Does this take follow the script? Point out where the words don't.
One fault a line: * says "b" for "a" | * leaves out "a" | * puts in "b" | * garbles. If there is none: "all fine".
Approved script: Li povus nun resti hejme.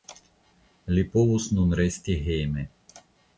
all fine